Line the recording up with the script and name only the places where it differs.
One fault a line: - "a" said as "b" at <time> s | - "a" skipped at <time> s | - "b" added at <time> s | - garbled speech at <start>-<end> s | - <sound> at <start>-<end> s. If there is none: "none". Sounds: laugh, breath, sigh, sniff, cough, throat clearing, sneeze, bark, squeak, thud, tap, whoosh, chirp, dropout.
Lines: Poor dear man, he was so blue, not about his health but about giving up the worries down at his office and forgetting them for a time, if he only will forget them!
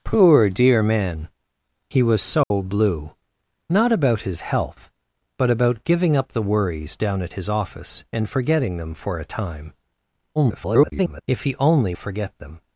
- dropout at 2.4-2.5 s
- garbled speech at 10.4-11.2 s
- "will" skipped at 11.9 s